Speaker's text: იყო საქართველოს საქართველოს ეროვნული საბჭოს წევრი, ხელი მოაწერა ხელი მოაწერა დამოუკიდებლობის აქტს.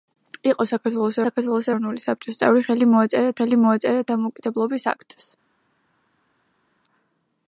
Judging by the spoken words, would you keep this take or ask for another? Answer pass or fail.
pass